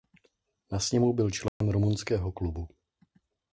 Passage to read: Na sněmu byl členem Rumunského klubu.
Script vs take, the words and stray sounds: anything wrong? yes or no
yes